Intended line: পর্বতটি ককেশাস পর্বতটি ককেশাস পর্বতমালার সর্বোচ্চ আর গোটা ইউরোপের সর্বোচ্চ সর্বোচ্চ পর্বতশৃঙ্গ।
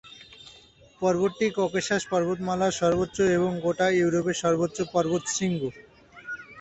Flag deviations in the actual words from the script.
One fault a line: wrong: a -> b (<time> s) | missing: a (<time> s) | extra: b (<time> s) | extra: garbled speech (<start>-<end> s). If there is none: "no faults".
missing: পর্বতটি ককেশাস (2.0 s)
wrong: আর -> এবং (3.4 s)
missing: সর্বোচ্চ (4.8 s)